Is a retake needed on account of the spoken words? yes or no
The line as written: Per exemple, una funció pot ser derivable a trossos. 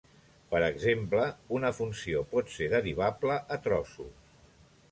no